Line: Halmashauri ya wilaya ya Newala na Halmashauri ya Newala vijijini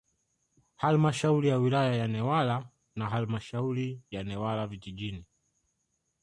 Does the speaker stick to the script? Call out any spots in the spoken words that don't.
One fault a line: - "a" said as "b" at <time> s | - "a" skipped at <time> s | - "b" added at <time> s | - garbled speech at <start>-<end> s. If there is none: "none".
none